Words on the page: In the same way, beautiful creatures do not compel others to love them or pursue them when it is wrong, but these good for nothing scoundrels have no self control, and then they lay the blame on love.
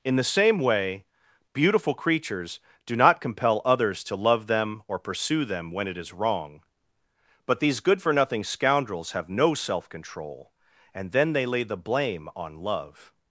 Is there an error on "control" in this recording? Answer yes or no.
no